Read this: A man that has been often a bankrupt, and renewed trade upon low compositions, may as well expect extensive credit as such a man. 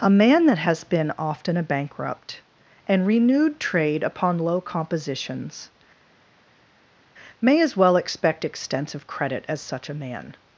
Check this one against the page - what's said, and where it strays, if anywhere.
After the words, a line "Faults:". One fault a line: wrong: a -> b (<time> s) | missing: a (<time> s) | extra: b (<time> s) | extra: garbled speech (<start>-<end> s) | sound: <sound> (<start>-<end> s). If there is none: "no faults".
A man that has been often a bankrupt, and renewed trade upon low compositions, may as well expect extensive credit as such a man.
Faults:
no faults